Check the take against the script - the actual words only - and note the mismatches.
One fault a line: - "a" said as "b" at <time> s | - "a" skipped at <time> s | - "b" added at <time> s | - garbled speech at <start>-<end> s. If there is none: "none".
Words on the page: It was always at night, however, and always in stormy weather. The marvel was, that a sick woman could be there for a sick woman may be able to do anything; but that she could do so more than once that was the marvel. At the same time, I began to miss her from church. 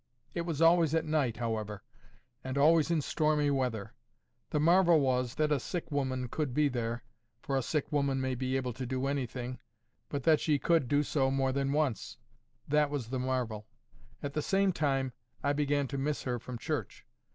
none